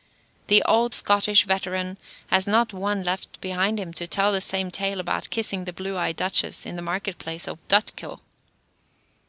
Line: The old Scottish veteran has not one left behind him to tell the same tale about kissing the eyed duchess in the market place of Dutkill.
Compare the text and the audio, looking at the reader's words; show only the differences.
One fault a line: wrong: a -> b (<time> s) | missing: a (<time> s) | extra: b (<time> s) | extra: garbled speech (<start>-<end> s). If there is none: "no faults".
extra: blue (5.7 s)